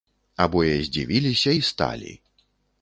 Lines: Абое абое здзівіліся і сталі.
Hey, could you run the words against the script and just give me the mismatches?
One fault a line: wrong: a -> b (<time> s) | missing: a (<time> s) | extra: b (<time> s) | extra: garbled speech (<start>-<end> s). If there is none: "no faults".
missing: абое (0.7 s)